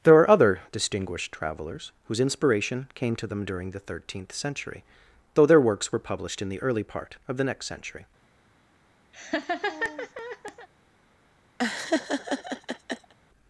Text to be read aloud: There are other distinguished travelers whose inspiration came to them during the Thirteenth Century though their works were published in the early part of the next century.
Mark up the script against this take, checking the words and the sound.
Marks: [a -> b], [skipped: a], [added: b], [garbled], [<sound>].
There are other distinguished travelers whose inspiration came to them during the Thirteenth Century though their works were published in the early part of the next century. [laugh] [laugh]